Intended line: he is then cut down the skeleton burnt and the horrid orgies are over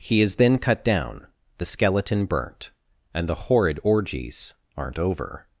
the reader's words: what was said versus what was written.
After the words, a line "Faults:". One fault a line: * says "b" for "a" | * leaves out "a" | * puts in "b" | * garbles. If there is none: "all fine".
he is then cut down the skeleton burnt and the horrid orgies aren't over
Faults:
* says "aren't" for "are"